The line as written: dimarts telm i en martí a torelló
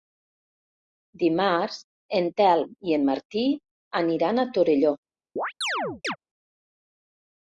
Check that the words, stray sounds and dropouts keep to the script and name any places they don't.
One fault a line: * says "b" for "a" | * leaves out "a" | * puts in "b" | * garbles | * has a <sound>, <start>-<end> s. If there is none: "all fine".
* puts in "en"
* puts in "aniran"
* has a chirp, 5.4-6.2 s